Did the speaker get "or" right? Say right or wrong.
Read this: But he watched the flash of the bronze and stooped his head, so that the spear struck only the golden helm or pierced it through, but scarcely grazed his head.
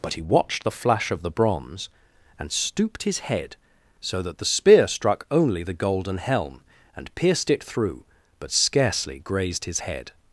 wrong